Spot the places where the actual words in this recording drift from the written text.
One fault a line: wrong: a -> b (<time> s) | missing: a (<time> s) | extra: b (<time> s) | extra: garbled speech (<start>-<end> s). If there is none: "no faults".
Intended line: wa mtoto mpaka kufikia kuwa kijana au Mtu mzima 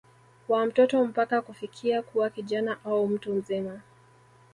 no faults